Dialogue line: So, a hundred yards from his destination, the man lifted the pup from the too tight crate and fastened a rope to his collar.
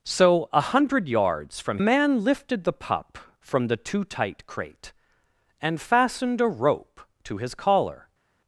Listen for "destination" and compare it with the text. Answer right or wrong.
wrong